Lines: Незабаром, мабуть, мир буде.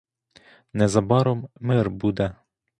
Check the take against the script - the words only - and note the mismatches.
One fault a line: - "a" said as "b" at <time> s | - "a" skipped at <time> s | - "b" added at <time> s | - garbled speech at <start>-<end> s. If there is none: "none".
- "мабуть" skipped at 1.5 s